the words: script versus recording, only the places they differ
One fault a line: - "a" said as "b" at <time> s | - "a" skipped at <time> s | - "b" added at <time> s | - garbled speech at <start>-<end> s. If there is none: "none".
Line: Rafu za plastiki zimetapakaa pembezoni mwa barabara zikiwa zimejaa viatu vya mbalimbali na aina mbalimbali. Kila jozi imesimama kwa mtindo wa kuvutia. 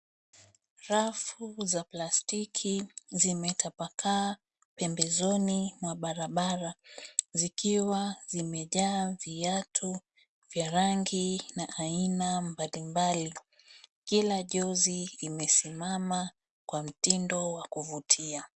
- "mbalimbali" said as "rangi" at 10.7 s